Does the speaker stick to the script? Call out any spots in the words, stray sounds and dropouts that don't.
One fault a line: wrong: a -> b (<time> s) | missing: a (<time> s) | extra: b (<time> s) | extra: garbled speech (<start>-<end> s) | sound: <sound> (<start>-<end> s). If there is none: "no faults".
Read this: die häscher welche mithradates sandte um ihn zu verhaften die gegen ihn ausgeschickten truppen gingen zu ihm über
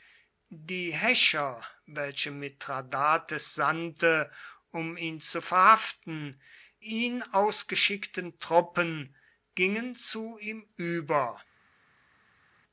missing: die gegen (6.4 s)